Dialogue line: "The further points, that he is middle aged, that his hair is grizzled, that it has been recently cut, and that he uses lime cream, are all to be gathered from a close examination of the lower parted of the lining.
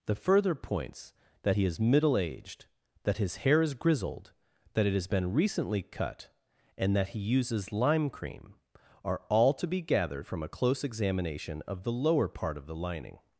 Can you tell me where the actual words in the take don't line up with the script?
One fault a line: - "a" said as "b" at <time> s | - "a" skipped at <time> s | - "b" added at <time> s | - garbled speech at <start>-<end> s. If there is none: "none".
- "parted" said as "part" at 12.3 s